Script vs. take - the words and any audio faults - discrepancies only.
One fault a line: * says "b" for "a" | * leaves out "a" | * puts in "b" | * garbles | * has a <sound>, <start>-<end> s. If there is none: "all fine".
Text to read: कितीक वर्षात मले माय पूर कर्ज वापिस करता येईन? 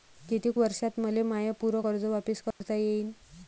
* has a dropout, 2.5-2.6 s